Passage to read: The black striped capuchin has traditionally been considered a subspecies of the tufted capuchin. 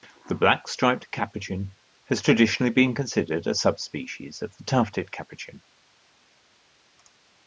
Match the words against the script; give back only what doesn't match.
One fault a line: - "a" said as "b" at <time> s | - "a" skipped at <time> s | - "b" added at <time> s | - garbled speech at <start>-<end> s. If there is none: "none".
none